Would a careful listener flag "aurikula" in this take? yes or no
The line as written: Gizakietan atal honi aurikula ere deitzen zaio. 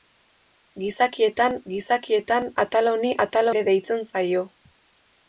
yes